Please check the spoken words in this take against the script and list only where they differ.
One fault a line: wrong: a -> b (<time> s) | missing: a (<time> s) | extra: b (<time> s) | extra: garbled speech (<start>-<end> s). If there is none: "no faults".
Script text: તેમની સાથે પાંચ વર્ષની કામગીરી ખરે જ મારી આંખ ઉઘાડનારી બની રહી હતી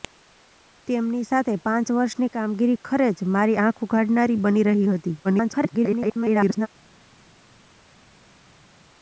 extra: garbled speech (5.2-6.7 s)